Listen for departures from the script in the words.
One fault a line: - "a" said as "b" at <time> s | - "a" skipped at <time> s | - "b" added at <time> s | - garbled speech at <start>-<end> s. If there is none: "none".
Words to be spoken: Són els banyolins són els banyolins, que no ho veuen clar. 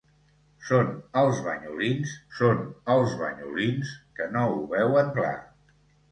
none